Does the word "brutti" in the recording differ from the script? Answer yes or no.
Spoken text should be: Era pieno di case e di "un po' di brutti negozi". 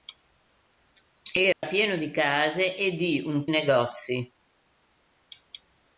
yes